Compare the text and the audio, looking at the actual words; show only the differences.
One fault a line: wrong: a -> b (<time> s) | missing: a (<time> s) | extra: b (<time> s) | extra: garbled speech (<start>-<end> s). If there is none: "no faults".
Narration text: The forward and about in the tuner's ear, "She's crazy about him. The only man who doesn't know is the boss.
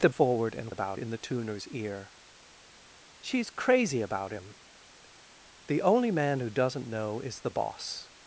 no faults